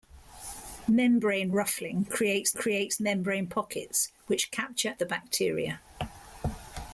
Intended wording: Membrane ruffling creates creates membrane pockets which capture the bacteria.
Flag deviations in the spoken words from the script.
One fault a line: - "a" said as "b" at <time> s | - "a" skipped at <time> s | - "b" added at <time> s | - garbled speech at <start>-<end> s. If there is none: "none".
none